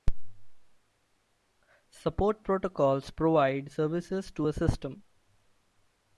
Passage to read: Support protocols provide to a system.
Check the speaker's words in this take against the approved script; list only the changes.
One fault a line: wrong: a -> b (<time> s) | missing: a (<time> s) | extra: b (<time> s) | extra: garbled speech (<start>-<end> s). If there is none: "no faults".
extra: services (3.7 s)